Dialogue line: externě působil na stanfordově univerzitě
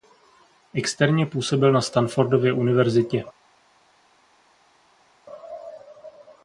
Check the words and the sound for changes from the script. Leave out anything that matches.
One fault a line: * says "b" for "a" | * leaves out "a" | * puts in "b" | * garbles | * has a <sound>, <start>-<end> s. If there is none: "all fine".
all fine